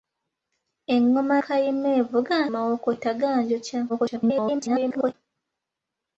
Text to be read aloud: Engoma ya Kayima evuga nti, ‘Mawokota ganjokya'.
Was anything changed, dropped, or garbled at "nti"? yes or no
yes